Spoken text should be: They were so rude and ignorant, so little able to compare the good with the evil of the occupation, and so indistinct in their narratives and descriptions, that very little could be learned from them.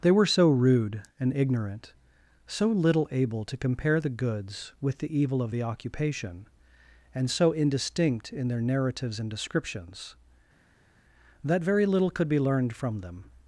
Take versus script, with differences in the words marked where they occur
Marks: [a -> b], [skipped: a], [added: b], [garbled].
They were so rude and ignorant, so little able to compare the [good -> goods] with the evil of the occupation, and so indistinct in their narratives and descriptions, that very little could be learned from them.